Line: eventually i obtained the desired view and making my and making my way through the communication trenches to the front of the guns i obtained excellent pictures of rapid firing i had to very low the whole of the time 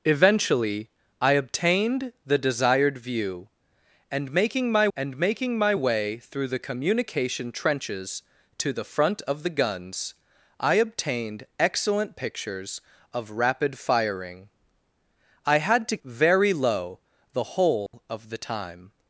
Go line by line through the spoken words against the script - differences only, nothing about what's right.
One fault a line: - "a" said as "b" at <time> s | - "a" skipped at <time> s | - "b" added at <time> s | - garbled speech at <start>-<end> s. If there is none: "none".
none